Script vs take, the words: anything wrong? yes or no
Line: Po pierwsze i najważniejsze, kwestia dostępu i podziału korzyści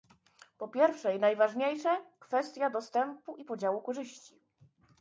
no